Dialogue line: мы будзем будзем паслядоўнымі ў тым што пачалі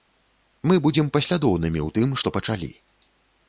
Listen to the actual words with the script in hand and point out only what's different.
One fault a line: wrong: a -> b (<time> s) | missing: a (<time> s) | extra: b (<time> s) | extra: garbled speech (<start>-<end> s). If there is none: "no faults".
missing: будзем (1.1 s)